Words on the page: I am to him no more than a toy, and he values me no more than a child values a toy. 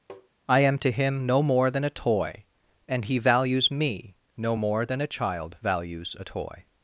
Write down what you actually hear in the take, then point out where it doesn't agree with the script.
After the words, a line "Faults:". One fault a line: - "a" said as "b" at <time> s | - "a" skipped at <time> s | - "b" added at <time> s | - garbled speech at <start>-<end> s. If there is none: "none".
I am to him no more than a toy, and he values me no more than a child values a toy.
Faults:
none